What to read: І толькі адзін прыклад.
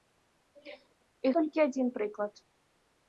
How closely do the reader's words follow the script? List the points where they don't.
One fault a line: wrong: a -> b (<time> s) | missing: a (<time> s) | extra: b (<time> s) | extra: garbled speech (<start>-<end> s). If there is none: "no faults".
no faults